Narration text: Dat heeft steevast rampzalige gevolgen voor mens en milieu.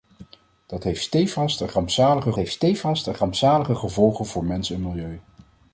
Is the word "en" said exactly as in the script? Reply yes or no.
yes